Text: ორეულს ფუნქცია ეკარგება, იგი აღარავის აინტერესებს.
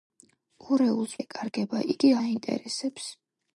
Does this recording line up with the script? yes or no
no